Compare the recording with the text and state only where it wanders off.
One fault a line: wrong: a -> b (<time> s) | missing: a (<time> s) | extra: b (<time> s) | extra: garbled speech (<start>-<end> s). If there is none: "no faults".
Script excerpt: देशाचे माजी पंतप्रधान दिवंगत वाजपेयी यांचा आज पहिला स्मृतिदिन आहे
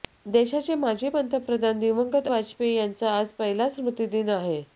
no faults